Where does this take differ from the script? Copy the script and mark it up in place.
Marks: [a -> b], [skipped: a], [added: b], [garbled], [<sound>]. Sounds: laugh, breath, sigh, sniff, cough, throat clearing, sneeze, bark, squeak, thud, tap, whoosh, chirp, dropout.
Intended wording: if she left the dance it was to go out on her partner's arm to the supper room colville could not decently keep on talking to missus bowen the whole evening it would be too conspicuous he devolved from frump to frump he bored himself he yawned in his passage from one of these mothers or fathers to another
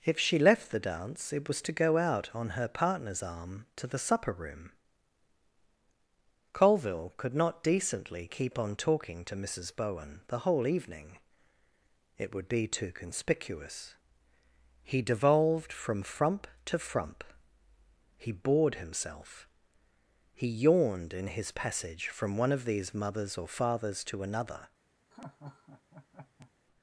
if she left the dance it was to go out on her partner's arm to the supper room colville could not decently keep on talking to missus bowen the whole evening it would be too conspicuous he devolved from frump to frump he bored himself he yawned in his passage from one of these mothers or fathers to another [laugh]